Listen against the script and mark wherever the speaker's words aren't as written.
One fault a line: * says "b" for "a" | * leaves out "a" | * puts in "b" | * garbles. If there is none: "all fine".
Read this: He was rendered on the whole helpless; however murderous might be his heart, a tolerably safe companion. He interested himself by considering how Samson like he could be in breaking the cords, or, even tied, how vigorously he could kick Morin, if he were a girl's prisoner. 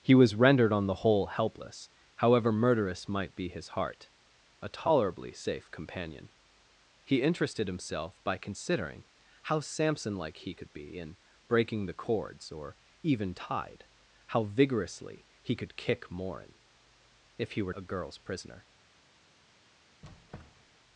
all fine